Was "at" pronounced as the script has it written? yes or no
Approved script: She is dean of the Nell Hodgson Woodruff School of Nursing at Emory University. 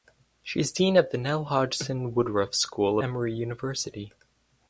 no